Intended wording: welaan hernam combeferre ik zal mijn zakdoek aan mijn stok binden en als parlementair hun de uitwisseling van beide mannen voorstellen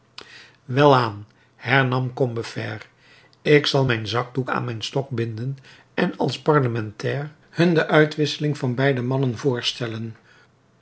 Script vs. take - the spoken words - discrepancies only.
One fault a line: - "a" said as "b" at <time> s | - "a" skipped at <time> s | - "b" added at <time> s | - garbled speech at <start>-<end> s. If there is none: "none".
none